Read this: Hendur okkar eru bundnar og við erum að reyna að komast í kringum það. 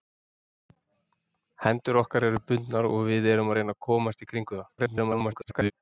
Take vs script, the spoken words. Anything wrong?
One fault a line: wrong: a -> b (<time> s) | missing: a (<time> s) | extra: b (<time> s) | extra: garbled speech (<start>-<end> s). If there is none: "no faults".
extra: garbled speech (4.8-5.7 s)